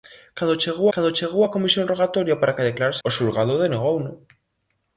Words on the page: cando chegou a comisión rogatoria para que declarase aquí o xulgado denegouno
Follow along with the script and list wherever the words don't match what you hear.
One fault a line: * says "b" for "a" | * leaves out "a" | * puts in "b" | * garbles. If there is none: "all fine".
* puts in "cando chegou"
* leaves out "aquí"